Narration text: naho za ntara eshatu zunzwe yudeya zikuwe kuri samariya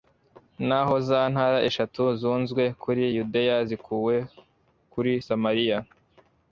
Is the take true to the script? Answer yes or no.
no